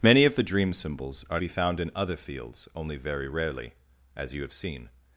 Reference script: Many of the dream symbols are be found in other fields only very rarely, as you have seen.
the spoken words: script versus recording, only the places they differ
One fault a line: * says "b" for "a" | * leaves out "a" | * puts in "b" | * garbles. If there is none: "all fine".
all fine